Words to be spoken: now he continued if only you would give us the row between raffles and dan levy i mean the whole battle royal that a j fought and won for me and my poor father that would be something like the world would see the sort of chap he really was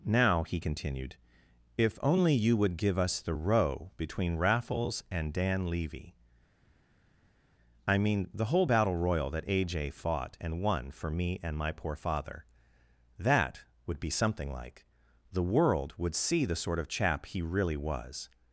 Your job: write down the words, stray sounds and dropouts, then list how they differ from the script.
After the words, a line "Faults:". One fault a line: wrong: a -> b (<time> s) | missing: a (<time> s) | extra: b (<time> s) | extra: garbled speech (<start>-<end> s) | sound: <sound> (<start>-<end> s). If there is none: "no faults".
now he continued if only you would give us the row between raffles and dan levy i mean the whole battle royal that a j fought and won for me and my poor father that would be something like the world would see the sort of chap he really was
Faults:
no faults